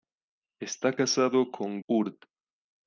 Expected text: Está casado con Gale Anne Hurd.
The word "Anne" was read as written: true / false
false